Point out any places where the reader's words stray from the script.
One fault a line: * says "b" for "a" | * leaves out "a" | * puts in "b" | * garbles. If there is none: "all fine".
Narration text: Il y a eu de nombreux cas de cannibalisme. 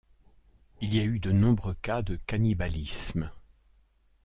all fine